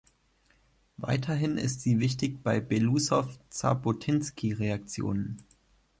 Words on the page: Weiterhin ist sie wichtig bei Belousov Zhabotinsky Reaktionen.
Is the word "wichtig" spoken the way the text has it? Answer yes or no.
yes